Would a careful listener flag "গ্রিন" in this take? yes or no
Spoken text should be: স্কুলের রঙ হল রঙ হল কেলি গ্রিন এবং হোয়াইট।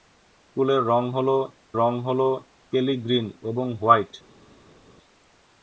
no